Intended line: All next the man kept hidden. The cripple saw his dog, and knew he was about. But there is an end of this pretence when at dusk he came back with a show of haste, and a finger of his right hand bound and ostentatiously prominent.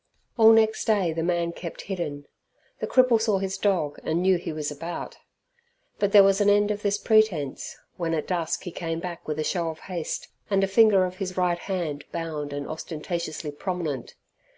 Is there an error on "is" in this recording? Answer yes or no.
yes